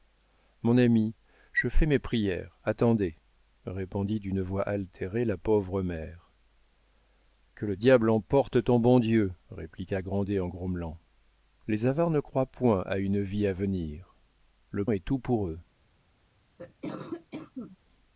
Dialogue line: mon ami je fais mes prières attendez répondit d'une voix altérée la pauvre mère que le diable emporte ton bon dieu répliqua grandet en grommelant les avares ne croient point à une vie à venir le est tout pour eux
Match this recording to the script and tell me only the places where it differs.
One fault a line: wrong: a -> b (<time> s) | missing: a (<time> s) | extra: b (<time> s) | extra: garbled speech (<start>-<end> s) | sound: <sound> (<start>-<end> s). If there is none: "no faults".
sound: cough (16.6-17.8 s)